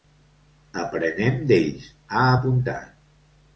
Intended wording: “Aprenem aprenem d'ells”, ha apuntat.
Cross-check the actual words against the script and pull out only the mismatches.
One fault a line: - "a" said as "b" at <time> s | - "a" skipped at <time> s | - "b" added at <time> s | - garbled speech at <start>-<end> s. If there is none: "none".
- "aprenem" skipped at 1.4 s